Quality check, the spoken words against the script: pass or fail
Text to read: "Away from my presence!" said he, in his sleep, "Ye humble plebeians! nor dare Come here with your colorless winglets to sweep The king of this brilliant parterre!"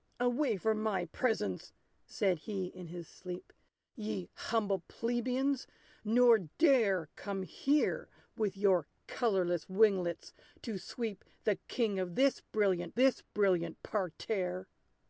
fail